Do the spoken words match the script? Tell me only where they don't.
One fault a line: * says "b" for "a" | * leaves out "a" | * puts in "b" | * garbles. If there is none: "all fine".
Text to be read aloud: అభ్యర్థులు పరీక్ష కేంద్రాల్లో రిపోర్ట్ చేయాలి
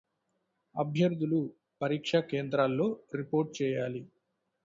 all fine